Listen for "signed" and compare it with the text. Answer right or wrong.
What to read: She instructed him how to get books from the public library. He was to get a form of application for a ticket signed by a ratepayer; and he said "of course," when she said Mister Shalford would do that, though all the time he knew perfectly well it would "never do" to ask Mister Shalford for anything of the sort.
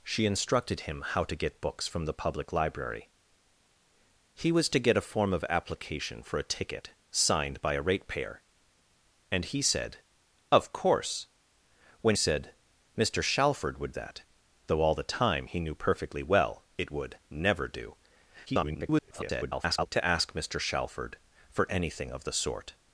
right